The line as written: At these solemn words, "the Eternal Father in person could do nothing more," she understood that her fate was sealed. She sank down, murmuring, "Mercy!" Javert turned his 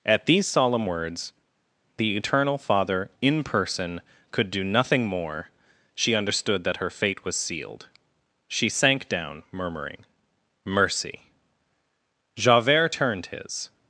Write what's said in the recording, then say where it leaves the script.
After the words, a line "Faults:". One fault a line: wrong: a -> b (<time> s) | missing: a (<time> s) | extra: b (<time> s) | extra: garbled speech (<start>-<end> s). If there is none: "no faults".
At these solemn words, "the Eternal Father in person could do nothing more," she understood that her fate was sealed. She sank down, murmuring, "Mercy!" Javert turned his
Faults:
no faults